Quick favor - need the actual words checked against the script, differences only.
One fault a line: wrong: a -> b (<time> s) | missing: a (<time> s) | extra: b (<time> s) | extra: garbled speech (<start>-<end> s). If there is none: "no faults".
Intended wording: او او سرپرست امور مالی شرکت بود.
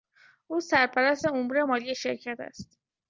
missing: او (0.6 s)
wrong: بود -> است (2.4 s)